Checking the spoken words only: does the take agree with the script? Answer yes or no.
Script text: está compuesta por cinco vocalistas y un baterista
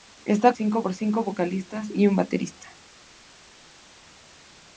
no